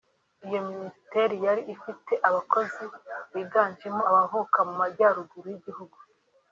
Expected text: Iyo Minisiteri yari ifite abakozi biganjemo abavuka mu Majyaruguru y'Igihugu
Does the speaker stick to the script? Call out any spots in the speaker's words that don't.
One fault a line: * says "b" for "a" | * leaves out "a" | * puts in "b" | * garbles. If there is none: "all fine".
all fine